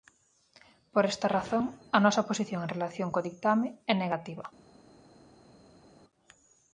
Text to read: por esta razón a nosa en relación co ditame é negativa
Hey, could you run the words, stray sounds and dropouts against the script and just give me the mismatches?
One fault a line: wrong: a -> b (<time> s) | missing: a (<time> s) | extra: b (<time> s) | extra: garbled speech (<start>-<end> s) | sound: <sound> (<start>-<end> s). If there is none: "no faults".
extra: posición (2.3 s)